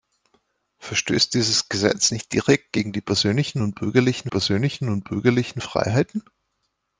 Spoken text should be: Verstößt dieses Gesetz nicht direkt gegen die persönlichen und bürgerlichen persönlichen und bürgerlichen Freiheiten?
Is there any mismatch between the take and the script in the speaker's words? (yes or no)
no